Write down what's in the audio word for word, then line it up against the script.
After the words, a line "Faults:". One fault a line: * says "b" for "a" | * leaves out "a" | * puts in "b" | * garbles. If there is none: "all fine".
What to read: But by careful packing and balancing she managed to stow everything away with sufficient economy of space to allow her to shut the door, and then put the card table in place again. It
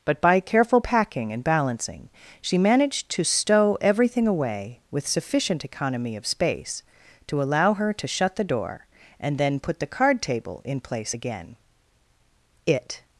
But by careful packing and balancing she managed to stow everything away with sufficient economy of space to allow her to shut the door, and then put the card table in place again. It
Faults:
all fine